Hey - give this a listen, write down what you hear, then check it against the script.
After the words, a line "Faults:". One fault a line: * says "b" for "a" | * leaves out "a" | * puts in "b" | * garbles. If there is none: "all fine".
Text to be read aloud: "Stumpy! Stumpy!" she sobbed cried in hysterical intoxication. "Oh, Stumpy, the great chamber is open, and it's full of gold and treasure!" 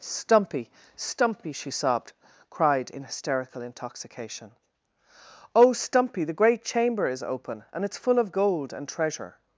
"Stumpy! Stumpy!" she sobbed cried in hysterical intoxication. "Oh, Stumpy, the great chamber is open, and it's full of gold and treasure!"
Faults:
all fine